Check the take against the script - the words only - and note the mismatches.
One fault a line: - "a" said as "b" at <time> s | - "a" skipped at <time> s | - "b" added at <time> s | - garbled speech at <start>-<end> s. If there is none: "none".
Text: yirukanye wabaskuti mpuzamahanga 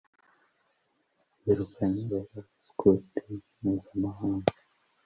none